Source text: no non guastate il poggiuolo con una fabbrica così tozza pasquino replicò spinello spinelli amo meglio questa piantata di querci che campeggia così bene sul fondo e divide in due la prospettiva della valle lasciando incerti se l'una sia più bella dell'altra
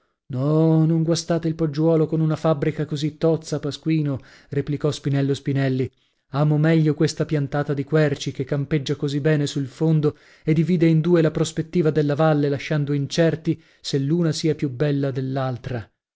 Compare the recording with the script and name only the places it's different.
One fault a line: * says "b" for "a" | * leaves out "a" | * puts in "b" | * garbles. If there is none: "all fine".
all fine